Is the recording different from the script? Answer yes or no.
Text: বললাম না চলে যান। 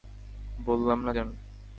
yes